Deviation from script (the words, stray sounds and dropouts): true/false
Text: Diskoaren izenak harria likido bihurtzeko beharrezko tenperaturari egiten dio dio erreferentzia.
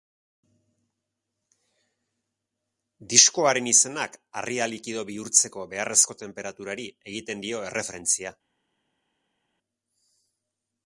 true